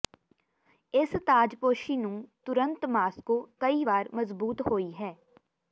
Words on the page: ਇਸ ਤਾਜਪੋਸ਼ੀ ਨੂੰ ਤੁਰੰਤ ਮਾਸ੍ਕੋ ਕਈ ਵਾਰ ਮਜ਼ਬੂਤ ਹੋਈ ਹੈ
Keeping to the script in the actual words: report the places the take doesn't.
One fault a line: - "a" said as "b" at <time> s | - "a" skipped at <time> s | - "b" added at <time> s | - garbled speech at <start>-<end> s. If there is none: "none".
none